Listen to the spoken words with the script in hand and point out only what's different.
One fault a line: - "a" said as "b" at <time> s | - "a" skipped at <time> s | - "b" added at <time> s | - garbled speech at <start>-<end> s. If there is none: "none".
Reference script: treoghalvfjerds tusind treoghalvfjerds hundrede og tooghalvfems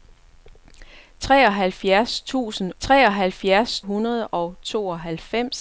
none